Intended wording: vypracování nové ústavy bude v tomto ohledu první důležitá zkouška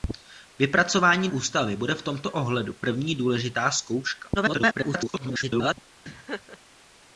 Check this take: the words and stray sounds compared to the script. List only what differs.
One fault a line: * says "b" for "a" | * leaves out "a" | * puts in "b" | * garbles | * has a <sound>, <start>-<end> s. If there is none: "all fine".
* leaves out "nové"
* garbles
* has a laugh, 6.1-6.6 s